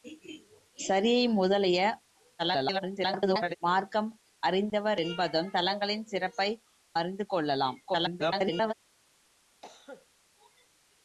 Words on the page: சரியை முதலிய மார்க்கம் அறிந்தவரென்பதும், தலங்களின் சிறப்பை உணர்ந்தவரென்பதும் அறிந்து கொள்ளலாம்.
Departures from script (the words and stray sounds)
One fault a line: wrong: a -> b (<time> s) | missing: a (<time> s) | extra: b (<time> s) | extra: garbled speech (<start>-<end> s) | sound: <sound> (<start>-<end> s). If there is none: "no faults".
extra: garbled speech (2.4-3.6 s)
missing: உணர்ந்தவரென்பதும் (6.5 s)
extra: garbled speech (7.9-8.7 s)
sound: cough (9.6-10.1 s)